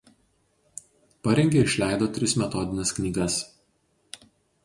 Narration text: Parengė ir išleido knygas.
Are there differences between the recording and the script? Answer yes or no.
yes